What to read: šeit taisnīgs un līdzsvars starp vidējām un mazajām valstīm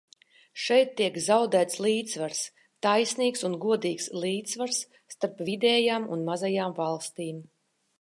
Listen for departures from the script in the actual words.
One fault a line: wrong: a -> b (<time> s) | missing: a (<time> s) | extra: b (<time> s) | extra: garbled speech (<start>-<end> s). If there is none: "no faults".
extra: tiek zaudēts līdzsvars (1.0 s)
extra: godīgs (3.7 s)